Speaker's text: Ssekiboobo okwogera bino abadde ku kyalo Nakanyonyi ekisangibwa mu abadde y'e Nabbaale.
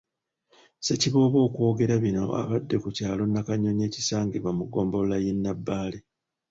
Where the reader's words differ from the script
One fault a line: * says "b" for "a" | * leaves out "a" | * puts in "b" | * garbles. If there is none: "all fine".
* says "ggombolola" for "abadde"